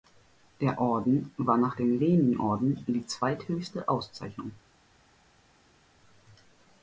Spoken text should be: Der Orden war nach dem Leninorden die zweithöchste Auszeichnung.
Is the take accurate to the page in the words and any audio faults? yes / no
yes